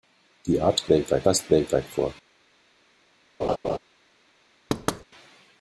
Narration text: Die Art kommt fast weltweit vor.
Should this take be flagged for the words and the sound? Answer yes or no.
yes